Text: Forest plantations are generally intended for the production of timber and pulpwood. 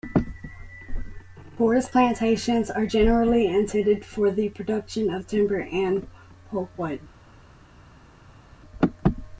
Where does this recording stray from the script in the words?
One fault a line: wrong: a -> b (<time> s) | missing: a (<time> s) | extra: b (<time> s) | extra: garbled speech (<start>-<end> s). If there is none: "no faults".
no faults